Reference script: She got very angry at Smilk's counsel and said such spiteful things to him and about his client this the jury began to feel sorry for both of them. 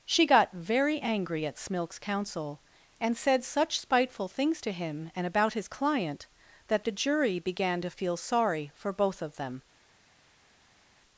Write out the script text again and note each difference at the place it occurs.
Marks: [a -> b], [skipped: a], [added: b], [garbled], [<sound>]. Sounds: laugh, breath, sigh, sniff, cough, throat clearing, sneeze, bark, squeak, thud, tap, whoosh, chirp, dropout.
She got very angry at Smilk's counsel and said such spiteful things to him and about his client [this -> that] the jury began to feel sorry for both of them.